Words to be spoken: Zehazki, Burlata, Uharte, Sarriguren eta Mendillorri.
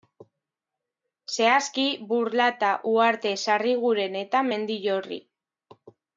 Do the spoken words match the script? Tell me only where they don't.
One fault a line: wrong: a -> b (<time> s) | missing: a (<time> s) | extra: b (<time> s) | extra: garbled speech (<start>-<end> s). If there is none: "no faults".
no faults